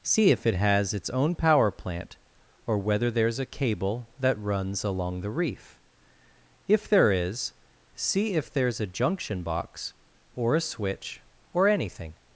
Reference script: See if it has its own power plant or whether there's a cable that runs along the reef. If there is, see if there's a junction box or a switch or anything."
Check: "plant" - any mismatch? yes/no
no